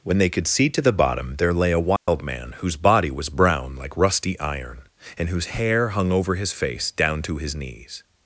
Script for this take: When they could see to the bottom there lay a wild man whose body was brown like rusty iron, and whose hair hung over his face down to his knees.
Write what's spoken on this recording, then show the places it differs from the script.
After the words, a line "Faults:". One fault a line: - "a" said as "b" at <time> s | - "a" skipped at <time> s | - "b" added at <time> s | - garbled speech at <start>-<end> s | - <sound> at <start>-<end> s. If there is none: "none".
When they could see to the bottom there lay a wild man whose body was brown like rusty iron, and whose hair hung over his face down to his knees.
Faults:
- dropout at 2.0-2.1 s